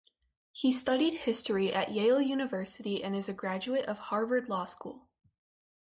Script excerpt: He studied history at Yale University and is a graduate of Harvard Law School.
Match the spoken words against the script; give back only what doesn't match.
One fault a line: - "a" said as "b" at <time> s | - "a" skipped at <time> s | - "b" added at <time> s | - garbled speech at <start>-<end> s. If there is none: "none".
none